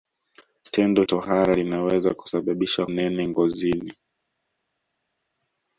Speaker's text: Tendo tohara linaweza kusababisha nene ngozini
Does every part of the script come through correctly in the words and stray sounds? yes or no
yes